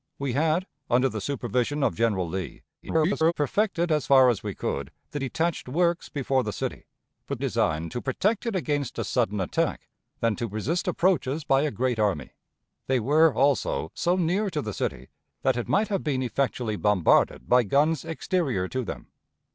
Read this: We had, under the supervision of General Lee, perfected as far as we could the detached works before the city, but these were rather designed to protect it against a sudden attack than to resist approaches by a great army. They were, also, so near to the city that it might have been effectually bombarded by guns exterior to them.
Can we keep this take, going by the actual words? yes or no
no